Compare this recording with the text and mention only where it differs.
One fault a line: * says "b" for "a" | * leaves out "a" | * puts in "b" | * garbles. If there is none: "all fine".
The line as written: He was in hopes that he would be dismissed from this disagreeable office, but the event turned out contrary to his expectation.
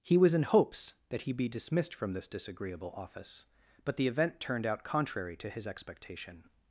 * leaves out "would"